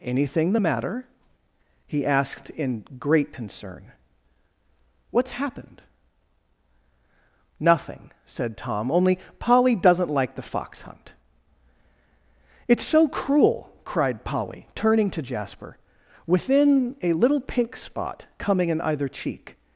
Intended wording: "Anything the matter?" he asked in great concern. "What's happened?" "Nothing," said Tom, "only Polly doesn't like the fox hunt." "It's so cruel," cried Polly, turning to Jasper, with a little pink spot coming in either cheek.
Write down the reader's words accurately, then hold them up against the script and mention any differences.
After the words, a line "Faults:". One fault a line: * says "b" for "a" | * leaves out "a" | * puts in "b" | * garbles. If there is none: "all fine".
"Anything the matter?" he asked in great concern. "What's happened?" "Nothing," said Tom, "only Polly doesn't like the fox hunt." "It's so cruel," cried Polly, turning to Jasper, within a little pink spot coming in either cheek.
Faults:
* says "within" for "with"